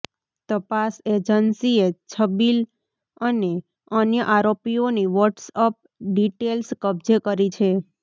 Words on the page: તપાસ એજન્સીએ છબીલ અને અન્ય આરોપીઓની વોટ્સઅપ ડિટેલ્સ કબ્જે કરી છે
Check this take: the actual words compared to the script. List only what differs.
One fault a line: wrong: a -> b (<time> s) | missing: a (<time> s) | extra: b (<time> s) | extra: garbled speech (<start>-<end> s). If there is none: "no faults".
no faults